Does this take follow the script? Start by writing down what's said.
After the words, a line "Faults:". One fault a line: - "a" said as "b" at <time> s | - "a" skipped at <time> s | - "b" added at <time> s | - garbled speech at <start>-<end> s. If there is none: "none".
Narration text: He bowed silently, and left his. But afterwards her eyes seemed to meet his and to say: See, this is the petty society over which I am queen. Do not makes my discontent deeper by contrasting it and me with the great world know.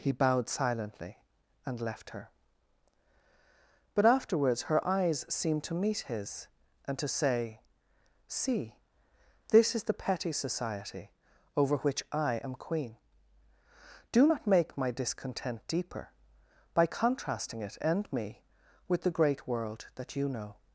He bowed silently, and left her. But afterwards her eyes seemed to meet his and to say: See, this is the petty society over which I am queen. Do not make my discontent deeper by contrasting it and me with the great world that you know.
Faults:
- "his" said as "her" at 2.1 s
- "makes" said as "make" at 14.5 s
- "that you" added at 20.0 s